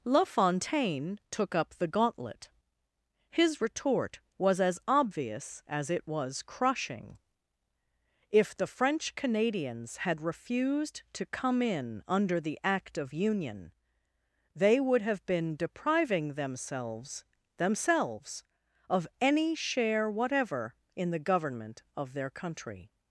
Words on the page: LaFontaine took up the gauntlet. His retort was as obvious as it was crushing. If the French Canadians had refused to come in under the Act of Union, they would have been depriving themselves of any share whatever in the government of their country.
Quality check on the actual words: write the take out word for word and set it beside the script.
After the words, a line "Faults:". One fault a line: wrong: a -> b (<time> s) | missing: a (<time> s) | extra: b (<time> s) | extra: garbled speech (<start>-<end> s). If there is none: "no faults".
LaFontaine took up the gauntlet. His retort was as obvious as it was crushing. If the French Canadians had refused to come in under the Act of Union, they would have been depriving themselves themselves of any share whatever in the government of their country.
Faults:
extra: themselves (17.6 s)